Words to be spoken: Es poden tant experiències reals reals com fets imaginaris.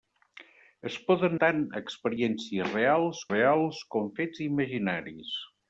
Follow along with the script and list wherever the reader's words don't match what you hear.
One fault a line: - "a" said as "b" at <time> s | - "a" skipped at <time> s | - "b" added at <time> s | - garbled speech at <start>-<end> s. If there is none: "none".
none